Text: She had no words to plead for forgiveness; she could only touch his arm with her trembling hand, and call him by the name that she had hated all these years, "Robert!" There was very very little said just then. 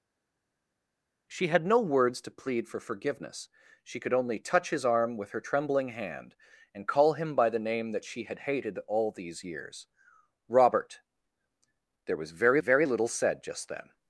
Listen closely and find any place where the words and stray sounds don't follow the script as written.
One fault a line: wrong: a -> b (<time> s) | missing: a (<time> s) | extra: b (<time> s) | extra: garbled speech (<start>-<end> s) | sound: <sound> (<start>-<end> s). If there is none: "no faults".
no faults